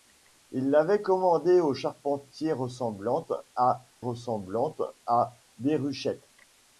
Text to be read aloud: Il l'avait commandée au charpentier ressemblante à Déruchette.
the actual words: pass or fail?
fail